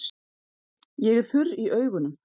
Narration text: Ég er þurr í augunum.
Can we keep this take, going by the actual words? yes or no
yes